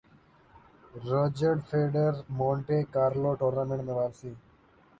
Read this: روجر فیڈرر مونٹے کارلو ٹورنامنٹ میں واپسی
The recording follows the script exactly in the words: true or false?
true